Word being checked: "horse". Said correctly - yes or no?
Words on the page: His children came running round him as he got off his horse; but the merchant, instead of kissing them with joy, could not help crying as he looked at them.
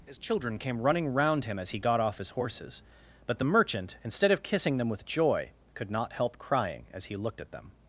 no